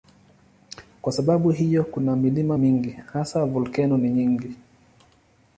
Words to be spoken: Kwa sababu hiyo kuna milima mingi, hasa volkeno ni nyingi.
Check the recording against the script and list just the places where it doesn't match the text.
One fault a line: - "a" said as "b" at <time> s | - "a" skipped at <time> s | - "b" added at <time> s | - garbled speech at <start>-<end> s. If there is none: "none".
none